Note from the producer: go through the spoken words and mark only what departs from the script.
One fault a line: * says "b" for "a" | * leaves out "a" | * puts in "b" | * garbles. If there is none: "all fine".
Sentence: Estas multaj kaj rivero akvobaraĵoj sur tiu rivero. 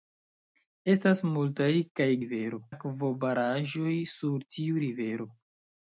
all fine